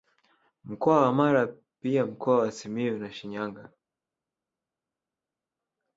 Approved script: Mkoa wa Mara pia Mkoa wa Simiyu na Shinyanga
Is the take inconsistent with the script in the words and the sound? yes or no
no